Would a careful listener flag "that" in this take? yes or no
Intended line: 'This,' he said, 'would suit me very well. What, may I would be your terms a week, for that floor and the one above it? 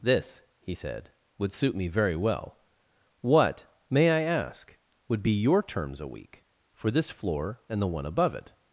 yes